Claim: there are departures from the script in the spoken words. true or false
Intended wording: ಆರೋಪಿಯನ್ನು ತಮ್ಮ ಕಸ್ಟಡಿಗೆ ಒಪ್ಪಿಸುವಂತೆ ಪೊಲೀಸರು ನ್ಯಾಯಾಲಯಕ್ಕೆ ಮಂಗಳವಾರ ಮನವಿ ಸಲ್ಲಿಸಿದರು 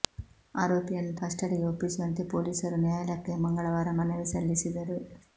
true